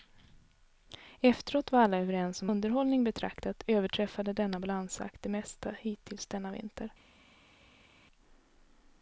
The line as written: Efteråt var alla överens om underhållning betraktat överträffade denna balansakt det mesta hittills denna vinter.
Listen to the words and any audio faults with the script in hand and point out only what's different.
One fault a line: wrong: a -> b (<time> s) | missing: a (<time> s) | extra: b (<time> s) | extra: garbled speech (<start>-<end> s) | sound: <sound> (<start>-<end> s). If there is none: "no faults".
no faults